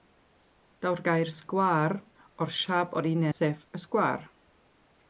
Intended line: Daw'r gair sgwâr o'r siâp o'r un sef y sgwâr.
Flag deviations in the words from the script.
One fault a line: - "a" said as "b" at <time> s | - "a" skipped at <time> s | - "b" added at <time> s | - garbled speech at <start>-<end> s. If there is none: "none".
none